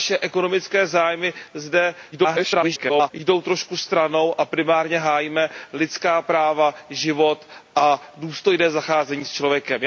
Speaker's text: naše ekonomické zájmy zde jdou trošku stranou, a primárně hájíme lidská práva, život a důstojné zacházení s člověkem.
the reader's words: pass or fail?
fail